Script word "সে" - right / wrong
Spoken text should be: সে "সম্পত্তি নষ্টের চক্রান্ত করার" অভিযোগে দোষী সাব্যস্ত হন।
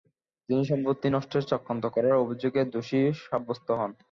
wrong